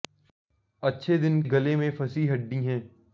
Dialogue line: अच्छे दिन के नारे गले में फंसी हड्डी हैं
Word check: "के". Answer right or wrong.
wrong